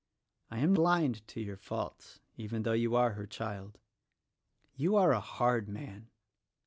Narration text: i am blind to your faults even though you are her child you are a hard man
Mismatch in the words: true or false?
false